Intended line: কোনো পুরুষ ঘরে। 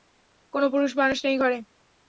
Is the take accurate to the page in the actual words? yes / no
no